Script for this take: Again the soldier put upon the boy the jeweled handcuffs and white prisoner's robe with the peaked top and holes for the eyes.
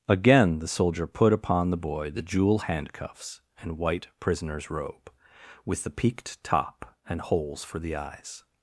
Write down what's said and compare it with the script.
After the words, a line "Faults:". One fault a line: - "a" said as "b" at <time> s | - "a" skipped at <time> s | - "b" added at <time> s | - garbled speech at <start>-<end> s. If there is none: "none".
Again the soldier put upon the boy the jewel handcuffs and white prisoner's robe with the peaked top and holes for the eyes.
Faults:
- "jeweled" said as "jewel" at 2.2 s